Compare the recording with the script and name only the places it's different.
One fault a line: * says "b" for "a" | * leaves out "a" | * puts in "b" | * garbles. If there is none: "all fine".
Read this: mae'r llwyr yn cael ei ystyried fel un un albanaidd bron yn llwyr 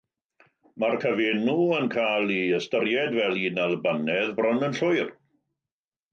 * says "cyfenw" for "llwyr"
* leaves out "un"